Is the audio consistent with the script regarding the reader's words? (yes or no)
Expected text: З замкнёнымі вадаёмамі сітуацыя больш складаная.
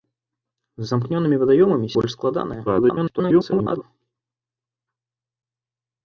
no